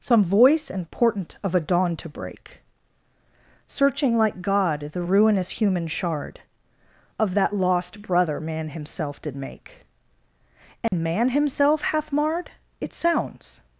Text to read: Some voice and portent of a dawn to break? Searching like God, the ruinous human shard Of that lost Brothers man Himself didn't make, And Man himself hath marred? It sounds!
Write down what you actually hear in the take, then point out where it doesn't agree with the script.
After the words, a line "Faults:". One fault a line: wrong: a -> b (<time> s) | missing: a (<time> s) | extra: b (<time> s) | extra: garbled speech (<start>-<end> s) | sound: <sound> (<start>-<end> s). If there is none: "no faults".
Some voice and portent of a dawn to break? Searching like God, the ruinous human shard Of that lost Brother man Himself did make, And Man himself hath marred? It sounds!
Faults:
wrong: Brothers -> Brother (8.0 s)
wrong: didn't -> did (9.2 s)
sound: dropout (10.9-10.9 s)